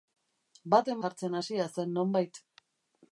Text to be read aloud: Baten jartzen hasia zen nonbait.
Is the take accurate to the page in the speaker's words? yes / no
yes